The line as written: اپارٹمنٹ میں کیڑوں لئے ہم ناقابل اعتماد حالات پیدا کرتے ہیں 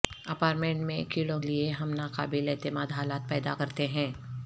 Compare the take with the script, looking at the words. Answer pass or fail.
pass